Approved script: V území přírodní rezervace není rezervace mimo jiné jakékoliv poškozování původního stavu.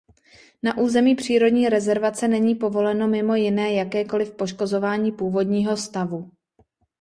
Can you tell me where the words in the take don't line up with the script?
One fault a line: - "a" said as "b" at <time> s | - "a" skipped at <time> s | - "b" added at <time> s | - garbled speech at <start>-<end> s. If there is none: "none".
- "V" said as "Na" at 0.6 s
- "rezervace" said as "povoleno" at 2.5 s